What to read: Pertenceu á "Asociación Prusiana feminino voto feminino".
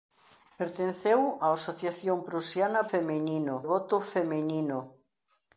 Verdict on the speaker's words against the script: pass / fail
pass